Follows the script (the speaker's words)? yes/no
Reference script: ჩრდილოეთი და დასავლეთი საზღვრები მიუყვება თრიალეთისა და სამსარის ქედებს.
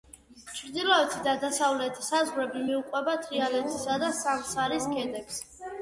yes